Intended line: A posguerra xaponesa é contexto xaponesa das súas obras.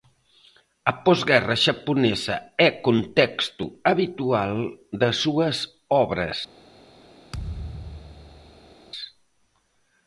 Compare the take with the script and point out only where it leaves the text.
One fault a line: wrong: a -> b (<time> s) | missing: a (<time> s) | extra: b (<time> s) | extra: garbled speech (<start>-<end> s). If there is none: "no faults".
wrong: xaponesa -> habitual (3.9 s)